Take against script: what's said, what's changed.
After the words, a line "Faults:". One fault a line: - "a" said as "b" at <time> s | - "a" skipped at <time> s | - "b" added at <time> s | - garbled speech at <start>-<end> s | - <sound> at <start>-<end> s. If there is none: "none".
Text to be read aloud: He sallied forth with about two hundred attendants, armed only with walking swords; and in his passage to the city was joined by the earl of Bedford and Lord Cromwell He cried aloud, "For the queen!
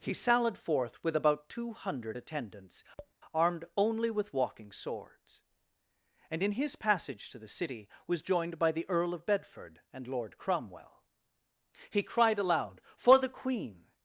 He sallied forth with about two hundred attendants, armed only with walking swords; and in his passage to the city was joined by the earl of Bedford and Lord Cromwell He cried aloud, "For the queen!
Faults:
- tap at 3.0-3.1 s